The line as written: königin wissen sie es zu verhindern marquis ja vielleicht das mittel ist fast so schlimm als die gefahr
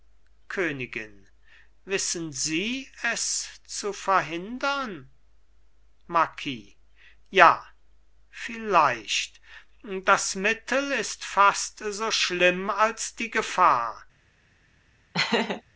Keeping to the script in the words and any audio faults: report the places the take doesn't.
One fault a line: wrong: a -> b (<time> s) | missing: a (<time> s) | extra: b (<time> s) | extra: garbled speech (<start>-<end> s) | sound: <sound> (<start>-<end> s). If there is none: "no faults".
sound: laugh (15.1-15.6 s)